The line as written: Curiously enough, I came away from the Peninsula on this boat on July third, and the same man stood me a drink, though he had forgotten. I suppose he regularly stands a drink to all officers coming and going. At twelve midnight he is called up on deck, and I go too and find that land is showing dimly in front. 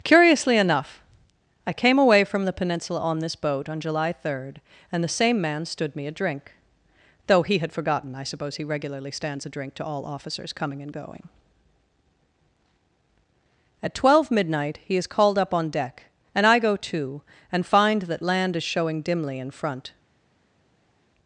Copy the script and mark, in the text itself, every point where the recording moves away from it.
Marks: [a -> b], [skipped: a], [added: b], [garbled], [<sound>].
Curiously enough, I came away from the Peninsula on this boat on July third, and the same man stood me a drink, though he had forgotten. I suppose he regularly stands a drink to all officers coming and going. At twelve midnight he is called up on deck, and I go too and find that land is showing dimly in front.